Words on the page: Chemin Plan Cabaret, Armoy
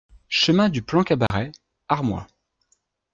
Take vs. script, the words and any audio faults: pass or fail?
fail